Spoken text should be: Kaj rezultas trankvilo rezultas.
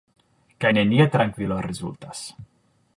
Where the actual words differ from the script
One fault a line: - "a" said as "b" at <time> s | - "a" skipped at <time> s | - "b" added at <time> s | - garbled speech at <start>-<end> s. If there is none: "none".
- "rezultas" said as "nenia" at 0.7 s